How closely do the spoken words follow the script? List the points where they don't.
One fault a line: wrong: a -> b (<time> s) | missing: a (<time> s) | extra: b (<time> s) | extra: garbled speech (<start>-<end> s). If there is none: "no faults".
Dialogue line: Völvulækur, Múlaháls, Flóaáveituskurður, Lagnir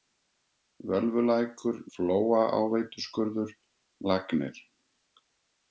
missing: Múlaháls (1.8 s)